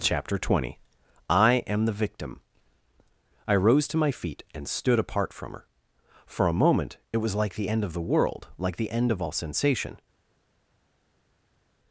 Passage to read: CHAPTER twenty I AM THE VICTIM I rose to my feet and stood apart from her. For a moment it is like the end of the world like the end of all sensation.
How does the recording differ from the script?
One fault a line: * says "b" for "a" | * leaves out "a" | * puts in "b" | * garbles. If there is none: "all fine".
* says "was" for "is"